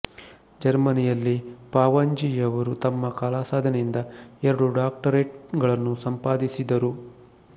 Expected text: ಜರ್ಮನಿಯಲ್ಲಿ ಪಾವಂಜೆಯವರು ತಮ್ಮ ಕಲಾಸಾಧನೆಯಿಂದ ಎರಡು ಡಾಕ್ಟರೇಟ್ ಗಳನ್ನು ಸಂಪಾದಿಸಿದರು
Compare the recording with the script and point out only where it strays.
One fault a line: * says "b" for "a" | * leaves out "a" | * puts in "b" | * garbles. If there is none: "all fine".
all fine